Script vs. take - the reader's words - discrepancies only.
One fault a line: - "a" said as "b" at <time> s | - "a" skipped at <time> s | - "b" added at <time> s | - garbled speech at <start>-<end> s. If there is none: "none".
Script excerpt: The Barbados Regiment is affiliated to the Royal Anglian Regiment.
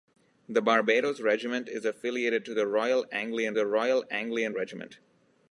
- "the Royal Anglian" added at 3.5 s